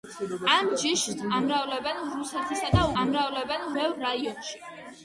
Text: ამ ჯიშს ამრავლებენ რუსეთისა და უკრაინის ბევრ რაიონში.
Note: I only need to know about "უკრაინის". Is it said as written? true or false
false